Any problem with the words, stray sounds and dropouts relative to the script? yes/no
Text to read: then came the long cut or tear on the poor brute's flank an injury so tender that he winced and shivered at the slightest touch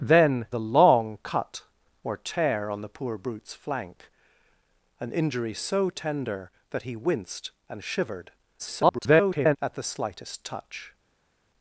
yes